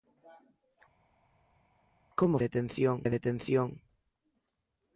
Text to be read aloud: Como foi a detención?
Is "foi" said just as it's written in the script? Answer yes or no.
no